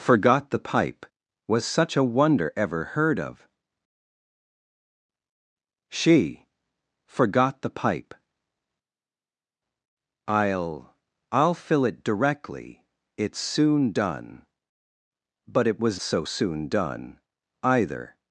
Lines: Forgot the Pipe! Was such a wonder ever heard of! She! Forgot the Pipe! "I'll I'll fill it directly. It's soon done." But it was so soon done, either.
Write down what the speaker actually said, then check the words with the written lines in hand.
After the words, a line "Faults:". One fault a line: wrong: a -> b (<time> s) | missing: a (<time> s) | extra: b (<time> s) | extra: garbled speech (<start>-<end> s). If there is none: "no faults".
Forgot the Pipe! Was such a wonder ever heard of! She! Forgot the Pipe! "I'll I'll fill it directly. It's soon done." But it was so soon done, either.
Faults:
no faults